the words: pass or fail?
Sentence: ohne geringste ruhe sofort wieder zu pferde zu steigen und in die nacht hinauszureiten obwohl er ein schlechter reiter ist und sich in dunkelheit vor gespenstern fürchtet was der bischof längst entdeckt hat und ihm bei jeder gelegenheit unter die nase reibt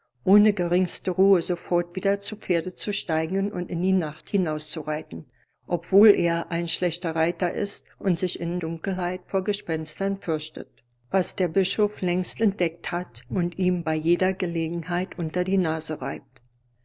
pass